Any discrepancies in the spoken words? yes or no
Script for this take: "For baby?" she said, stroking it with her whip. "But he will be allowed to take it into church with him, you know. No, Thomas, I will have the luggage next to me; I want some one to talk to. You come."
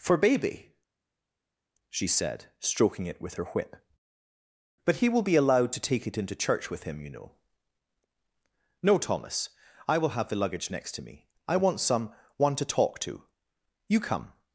no